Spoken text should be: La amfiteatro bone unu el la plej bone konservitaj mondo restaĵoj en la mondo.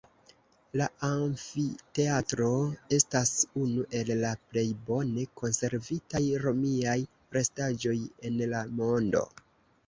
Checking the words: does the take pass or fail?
fail